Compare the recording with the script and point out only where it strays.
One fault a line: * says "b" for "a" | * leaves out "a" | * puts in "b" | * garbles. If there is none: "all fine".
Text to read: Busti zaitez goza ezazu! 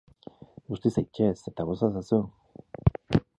* puts in "eta"